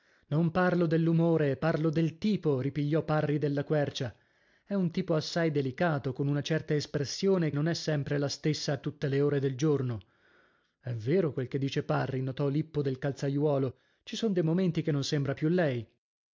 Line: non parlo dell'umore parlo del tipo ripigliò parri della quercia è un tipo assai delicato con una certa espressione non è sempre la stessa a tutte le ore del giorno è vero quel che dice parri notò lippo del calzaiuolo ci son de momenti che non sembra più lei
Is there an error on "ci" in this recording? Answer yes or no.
no